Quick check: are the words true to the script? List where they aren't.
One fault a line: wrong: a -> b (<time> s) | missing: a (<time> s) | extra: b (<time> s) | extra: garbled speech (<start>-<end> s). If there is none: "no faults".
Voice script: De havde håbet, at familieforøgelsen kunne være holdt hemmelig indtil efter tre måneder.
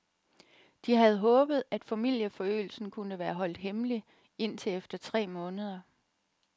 no faults